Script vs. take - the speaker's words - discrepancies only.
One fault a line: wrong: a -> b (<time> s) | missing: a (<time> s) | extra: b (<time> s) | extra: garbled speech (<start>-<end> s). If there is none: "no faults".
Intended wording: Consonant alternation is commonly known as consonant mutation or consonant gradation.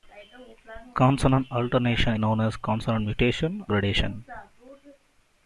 missing: is commonly (2.2 s)
missing: or consonant (3.6 s)